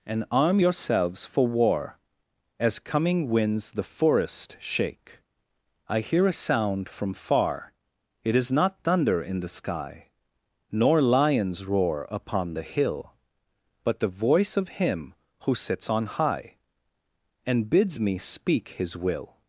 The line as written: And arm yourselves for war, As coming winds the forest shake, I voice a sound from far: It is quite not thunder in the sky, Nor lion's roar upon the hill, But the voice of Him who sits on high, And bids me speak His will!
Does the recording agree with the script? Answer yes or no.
no